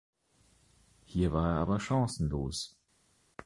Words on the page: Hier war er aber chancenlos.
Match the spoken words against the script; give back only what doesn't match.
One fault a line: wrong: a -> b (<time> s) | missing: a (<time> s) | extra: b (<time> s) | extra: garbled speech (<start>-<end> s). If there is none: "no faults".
no faults